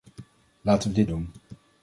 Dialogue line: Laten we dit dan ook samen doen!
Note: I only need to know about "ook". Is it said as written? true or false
false